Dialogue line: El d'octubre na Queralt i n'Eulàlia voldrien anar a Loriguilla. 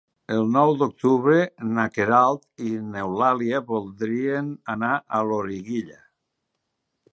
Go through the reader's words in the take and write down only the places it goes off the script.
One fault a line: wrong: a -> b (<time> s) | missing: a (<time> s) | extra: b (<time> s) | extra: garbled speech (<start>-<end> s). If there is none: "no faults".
extra: nou (0.5 s)